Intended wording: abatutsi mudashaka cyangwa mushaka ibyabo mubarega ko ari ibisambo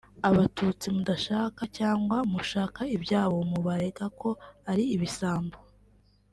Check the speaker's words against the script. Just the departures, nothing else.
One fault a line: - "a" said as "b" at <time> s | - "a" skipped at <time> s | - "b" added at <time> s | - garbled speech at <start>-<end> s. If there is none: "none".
none